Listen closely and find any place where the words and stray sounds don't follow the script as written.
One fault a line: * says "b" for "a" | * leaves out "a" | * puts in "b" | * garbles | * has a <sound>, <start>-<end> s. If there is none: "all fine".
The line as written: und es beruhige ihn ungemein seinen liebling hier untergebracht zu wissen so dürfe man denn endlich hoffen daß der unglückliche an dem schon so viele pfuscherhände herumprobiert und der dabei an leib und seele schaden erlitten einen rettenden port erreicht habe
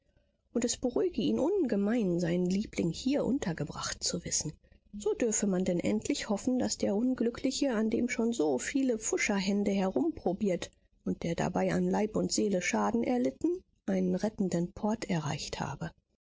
all fine